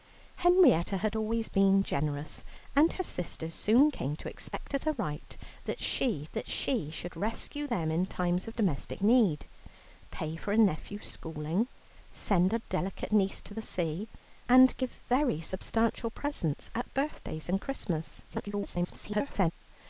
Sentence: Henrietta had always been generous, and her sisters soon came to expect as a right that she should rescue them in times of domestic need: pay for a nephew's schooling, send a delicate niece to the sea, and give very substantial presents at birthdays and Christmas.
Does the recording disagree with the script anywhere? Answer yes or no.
yes